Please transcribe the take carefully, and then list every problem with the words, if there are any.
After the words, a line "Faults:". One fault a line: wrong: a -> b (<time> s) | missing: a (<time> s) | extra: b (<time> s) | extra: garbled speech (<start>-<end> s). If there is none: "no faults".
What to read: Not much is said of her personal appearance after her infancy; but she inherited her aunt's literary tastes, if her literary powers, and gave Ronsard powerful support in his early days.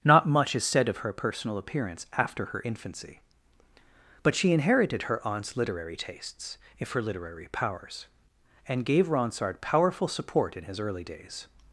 Not much is said of her personal appearance after her infancy; but she inherited her aunt's literary tastes, if her literary powers, and gave Ronsard powerful support in his early days.
Faults:
no faults